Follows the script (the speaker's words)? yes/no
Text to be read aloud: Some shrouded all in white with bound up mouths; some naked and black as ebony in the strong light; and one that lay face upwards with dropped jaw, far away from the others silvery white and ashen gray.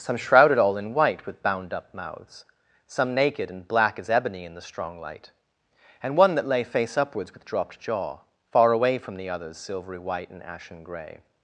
yes